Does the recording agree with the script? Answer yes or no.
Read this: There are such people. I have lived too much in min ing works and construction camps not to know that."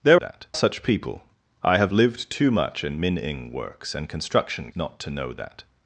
no